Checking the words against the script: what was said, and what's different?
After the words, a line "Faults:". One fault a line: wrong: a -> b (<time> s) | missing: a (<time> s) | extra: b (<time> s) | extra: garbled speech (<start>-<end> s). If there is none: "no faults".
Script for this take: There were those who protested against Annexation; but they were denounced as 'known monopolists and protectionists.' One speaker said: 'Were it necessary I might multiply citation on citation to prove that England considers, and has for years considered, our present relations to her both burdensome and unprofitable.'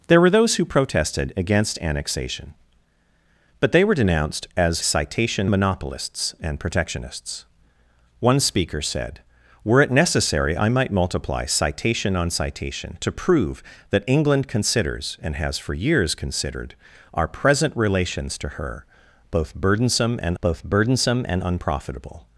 There were those who protested against Annexation; but they were denounced as 'citation monopolists and protectionists.' One speaker said: 'Were it necessary I might multiply citation on citation to prove that England considers, and has for years considered, our present relations to her both burdensome and both burdensome and unprofitable.'
Faults:
wrong: known -> citation (4.8 s)
extra: both burdensome and (20.4 s)